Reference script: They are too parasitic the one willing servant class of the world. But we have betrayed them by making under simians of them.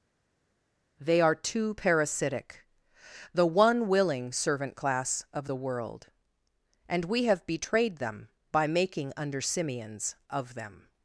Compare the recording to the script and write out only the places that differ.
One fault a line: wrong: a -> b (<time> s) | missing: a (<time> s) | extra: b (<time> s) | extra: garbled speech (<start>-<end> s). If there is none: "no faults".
wrong: But -> And (6.9 s)